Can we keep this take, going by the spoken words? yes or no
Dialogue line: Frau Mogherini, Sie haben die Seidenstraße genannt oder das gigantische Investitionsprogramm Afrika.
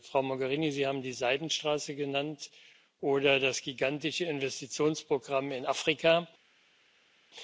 no